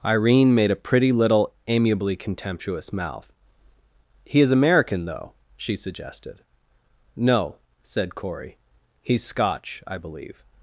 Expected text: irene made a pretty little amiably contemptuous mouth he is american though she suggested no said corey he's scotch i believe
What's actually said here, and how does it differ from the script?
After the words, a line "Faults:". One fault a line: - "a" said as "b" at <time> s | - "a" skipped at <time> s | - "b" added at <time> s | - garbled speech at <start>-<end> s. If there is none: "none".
irene made a pretty little amiably contemptuous mouth he is american though she suggested no said corey he's scotch i believe
Faults:
none